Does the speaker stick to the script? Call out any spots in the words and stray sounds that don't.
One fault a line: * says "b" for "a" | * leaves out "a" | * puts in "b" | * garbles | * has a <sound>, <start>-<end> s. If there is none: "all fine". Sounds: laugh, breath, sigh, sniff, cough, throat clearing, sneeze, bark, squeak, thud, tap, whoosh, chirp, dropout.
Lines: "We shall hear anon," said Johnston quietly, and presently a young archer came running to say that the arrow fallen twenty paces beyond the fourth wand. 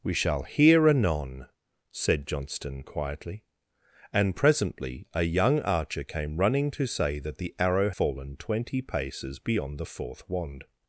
all fine